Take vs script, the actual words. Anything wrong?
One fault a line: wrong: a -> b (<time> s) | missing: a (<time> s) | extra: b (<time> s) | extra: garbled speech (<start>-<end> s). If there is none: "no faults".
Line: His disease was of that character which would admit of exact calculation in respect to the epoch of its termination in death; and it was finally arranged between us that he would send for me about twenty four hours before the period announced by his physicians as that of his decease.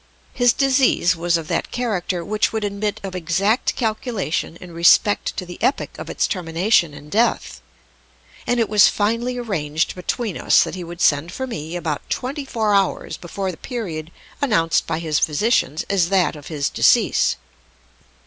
no faults